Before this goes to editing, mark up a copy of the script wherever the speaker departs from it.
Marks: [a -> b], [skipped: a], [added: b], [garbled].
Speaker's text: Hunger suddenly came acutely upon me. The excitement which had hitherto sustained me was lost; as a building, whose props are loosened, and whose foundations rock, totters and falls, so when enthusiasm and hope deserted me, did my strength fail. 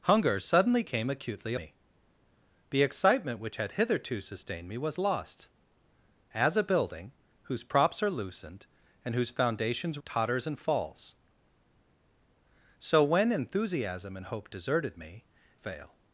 Hunger suddenly came acutely [skipped: upon] me. The excitement which had hitherto sustained me was lost; as a building, whose props are loosened, and whose foundations [skipped: rock,] totters and falls, so when enthusiasm and hope deserted me, [skipped: did my strength] fail.